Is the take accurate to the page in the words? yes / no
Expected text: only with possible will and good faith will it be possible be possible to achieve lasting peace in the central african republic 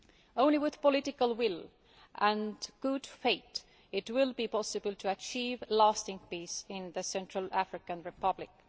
no